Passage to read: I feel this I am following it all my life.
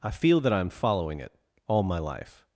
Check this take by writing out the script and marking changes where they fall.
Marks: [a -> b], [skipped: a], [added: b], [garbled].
I feel [this -> that] I am following it all my life.